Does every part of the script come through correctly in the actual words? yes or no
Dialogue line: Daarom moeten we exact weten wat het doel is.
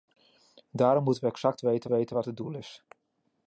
no